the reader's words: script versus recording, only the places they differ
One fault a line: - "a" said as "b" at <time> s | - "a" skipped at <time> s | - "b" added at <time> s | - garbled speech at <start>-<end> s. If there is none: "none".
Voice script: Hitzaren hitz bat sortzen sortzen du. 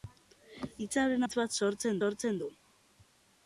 none